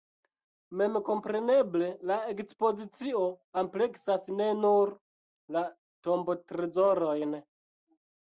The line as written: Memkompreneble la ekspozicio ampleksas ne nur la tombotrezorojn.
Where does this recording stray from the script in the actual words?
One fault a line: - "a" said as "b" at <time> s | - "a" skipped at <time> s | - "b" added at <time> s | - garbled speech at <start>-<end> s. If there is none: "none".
none